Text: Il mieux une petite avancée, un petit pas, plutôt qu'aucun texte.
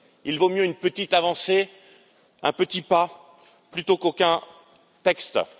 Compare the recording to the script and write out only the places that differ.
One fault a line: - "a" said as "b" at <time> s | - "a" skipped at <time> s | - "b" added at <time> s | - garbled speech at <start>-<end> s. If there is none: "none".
- "vaut" added at 0.4 s